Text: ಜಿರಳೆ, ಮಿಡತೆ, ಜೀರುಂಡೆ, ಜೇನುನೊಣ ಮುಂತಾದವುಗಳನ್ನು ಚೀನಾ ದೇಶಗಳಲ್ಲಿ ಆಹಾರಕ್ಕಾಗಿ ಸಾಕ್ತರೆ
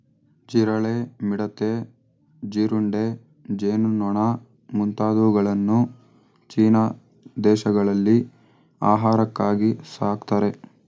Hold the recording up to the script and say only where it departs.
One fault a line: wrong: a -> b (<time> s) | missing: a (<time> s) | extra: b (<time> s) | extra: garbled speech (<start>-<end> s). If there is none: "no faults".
no faults